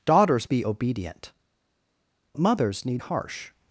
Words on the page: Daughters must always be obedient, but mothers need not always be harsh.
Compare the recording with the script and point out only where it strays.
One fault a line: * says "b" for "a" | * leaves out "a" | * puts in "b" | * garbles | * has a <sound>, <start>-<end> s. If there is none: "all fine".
* leaves out "must always"
* leaves out "but"
* leaves out "not always be"